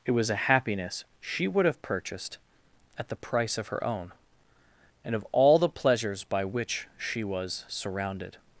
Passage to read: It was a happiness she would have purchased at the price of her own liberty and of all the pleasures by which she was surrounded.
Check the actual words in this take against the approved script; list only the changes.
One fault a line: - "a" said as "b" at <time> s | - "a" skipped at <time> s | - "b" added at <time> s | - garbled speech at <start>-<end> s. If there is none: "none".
- "liberty" skipped at 4.1 s